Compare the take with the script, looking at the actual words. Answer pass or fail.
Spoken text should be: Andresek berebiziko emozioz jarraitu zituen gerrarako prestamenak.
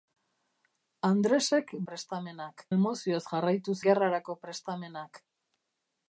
fail